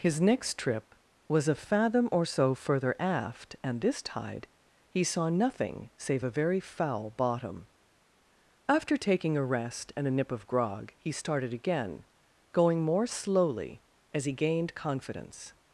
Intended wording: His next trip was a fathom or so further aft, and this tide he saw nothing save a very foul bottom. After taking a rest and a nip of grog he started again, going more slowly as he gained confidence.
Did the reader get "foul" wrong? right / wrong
right